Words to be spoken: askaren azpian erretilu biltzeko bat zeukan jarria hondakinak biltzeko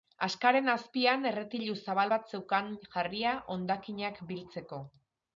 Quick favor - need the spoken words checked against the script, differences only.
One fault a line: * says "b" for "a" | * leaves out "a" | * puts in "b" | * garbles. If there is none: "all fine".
* says "zabal" for "biltzeko"